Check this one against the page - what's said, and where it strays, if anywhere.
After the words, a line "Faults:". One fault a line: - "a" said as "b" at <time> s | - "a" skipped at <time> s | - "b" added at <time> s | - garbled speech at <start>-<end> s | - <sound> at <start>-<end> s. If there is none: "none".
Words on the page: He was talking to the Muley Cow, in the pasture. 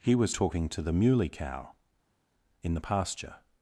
He was talking to the Muley Cow, in the pasture.
Faults:
none